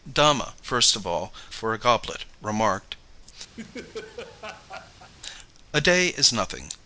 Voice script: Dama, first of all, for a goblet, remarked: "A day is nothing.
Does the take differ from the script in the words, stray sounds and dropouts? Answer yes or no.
yes